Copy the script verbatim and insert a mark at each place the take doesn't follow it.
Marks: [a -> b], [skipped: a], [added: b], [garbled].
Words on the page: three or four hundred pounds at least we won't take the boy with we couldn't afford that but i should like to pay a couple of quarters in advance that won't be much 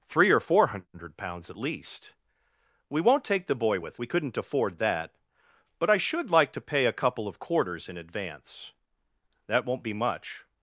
three or four hundred pounds at least we won't take the boy with we couldn't afford that but i should like to pay a couple of quarters in advance that won't be much